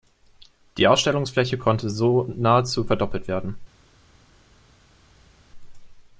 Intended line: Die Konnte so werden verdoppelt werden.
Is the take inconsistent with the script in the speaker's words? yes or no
yes